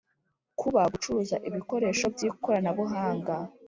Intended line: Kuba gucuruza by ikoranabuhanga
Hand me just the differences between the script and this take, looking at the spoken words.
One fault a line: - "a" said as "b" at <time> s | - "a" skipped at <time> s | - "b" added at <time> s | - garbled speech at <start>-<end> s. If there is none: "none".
- "ibikoresho" added at 1.5 s